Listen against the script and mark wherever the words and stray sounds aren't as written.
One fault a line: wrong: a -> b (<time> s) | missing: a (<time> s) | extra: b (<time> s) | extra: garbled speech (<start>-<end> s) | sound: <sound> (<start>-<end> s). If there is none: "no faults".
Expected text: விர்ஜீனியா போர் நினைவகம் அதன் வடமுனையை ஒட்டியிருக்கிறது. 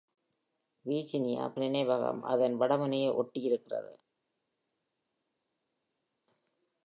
missing: போர் (1.5 s)